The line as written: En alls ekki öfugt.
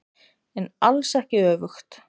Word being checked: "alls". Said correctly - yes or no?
yes